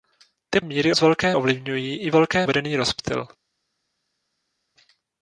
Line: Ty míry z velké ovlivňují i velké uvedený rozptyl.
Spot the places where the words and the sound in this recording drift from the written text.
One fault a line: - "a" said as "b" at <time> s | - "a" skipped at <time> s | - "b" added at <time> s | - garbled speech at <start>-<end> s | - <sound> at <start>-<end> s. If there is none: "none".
none